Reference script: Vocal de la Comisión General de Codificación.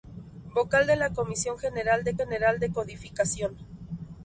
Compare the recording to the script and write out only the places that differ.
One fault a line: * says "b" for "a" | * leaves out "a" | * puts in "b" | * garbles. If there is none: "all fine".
* puts in "General de"